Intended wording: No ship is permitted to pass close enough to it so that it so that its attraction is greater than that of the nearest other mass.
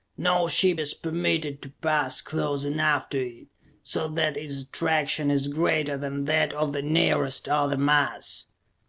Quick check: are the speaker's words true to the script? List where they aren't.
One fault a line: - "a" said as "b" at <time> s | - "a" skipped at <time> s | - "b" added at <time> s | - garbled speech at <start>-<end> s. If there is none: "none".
- "it so that" skipped at 4.4 s